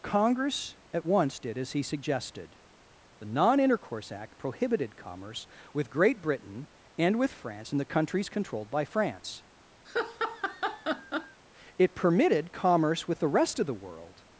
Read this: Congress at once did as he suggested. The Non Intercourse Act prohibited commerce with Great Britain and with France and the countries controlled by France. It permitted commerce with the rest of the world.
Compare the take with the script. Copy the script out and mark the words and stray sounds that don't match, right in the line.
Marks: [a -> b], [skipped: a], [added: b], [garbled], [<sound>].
Congress at once did as he suggested. The Non Intercourse Act prohibited commerce with Great Britain and with France and the countries controlled by France. [laugh] It permitted commerce with the rest of the world.